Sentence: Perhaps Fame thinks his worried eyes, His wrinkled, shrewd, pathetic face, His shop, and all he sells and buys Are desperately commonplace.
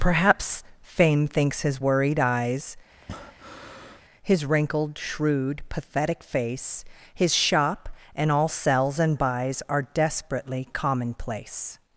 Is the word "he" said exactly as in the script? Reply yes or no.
no